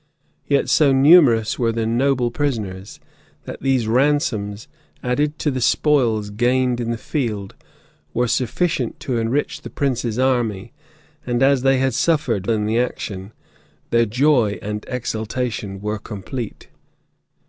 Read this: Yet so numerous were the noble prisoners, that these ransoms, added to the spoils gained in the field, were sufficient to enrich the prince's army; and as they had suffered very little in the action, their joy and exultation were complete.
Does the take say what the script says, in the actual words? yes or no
no